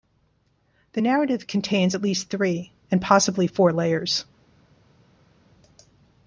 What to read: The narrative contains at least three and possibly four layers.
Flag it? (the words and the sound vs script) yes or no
no